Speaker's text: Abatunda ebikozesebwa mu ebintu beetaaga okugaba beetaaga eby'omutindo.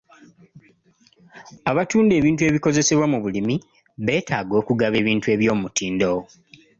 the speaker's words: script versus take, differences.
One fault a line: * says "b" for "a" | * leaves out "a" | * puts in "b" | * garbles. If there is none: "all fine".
* puts in "ebintu"
* says "bulimi" for "ebintu"
* says "ebintu" for "beetaaga"